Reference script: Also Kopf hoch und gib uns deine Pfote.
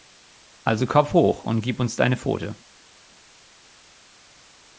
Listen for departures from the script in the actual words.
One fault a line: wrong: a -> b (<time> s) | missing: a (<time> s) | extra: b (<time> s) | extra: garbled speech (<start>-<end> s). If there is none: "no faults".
no faults